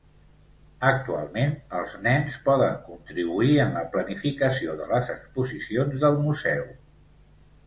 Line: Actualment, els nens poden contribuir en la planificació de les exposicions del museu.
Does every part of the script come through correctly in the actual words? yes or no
yes